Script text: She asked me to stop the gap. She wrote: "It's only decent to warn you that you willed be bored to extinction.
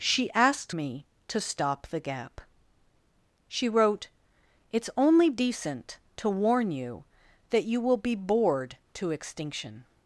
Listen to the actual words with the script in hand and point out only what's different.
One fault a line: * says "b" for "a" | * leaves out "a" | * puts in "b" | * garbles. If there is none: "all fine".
* says "will" for "willed"